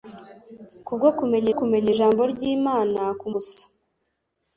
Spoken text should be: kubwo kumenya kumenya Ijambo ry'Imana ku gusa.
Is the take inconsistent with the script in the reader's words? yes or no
no